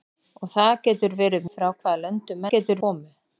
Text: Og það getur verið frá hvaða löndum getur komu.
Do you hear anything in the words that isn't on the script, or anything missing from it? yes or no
no